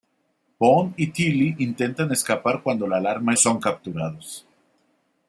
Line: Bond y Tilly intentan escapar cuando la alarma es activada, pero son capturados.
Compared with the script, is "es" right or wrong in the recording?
wrong